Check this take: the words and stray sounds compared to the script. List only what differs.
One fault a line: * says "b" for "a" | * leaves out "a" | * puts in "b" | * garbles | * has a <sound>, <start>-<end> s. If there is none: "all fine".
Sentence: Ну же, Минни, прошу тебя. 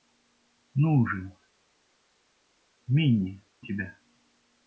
* leaves out "прошу"